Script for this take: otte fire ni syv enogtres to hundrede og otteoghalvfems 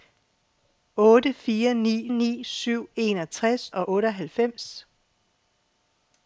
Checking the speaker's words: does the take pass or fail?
fail